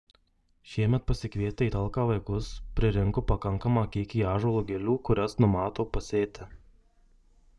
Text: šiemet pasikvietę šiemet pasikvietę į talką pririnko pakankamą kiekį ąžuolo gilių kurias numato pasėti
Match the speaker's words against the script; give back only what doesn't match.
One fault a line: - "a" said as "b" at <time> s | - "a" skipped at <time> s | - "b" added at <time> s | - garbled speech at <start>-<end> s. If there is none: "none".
- "šiemet pasikvietę" skipped at 1.7 s
- "vaikus" added at 2.1 s